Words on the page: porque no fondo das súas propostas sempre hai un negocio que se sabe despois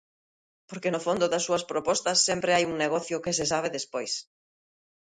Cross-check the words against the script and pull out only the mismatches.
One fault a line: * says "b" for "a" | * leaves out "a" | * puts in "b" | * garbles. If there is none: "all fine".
all fine